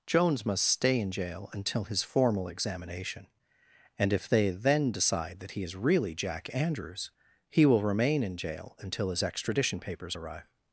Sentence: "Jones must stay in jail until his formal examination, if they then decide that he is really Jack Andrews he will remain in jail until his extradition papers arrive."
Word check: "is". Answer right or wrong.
right